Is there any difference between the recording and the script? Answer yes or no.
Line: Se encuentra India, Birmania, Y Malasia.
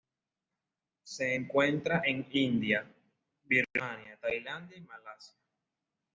yes